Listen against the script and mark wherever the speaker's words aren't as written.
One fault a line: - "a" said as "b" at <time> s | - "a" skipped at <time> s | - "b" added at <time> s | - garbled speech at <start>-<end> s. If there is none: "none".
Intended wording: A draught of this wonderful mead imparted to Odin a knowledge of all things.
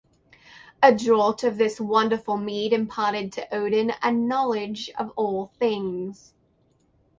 none